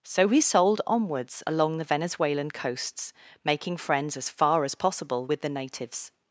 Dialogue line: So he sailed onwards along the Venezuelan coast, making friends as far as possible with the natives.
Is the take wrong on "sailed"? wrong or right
wrong